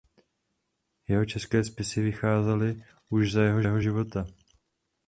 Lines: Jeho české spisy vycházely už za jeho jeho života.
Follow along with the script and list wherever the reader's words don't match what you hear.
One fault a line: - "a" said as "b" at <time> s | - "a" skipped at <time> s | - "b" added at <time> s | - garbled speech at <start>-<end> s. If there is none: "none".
none